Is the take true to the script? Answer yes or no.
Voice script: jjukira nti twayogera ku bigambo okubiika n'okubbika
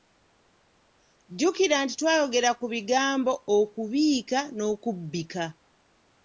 yes